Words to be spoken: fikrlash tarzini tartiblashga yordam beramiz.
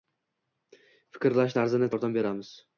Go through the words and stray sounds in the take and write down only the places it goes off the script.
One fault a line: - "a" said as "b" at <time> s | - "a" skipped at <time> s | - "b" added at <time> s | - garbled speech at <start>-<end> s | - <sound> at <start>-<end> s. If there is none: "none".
- "tartiblashga" skipped at 1.9 s